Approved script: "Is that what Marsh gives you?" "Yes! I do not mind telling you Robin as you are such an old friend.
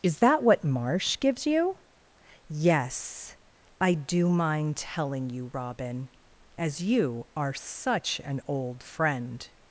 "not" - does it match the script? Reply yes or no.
no